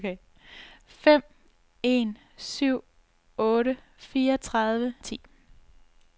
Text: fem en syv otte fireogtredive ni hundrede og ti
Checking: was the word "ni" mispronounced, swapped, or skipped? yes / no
yes